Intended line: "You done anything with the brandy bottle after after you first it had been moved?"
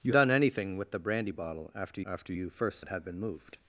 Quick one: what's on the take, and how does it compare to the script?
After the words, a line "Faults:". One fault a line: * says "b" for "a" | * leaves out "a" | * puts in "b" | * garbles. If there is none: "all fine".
"You done anything with the brandy bottle after after you first it had been moved?"
Faults:
all fine